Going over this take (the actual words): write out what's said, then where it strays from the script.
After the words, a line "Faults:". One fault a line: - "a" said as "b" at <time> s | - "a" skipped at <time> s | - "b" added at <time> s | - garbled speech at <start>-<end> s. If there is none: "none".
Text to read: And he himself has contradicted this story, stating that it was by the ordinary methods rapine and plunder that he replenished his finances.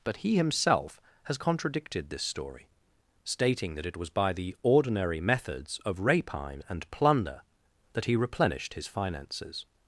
But he himself has contradicted this story, stating that it was by the ordinary methods of rapine and plunder that he replenished his finances.
Faults:
- "And" said as "But" at 0.0 s
- "of" added at 5.8 s